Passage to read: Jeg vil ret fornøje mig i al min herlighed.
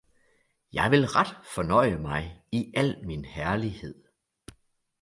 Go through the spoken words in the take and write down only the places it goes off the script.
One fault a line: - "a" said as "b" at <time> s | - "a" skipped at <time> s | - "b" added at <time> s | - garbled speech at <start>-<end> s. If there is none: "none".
none